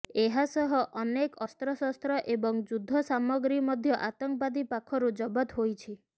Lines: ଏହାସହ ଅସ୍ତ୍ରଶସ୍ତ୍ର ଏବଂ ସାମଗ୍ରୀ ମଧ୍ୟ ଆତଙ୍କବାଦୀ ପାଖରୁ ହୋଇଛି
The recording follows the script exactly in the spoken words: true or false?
false